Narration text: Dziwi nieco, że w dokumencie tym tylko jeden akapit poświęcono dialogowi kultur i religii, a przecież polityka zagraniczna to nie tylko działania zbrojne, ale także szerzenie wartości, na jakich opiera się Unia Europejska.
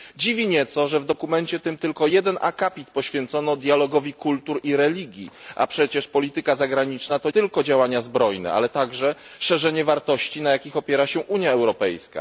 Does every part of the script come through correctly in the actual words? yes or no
no